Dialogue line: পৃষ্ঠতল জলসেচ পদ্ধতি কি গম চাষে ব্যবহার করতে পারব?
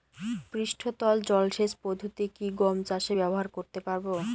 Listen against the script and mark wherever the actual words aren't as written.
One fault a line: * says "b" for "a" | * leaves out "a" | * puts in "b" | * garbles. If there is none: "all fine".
all fine